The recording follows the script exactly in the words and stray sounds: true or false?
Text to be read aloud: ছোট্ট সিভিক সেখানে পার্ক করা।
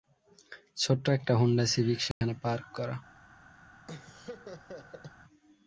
false